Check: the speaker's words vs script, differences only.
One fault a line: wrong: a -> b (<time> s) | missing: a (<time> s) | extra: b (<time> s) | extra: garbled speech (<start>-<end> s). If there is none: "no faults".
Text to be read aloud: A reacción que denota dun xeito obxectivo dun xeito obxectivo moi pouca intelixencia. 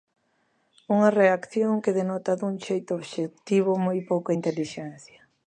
wrong: A -> Unha (0.9 s)
missing: dun xeito obxectivo (3.7 s)